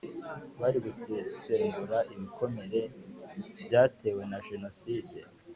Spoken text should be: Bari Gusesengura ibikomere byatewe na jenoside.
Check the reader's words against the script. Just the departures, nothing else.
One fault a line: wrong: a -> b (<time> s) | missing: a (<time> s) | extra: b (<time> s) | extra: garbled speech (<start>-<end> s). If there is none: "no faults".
no faults